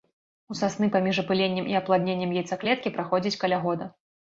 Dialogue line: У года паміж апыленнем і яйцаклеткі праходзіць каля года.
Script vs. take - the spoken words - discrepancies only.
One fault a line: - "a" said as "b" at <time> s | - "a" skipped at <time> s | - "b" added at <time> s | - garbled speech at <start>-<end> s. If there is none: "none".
- "года" said as "сасны" at 0.6 s
- "апладненнем" added at 1.8 s